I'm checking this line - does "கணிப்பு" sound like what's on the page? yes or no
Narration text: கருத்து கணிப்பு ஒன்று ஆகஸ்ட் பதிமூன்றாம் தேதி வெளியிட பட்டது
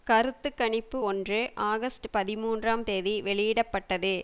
yes